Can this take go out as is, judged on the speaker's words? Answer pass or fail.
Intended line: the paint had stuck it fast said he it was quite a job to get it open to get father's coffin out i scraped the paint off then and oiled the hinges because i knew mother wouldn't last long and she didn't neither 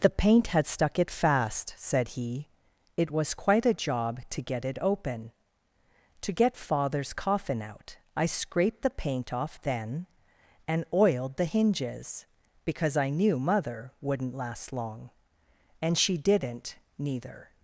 pass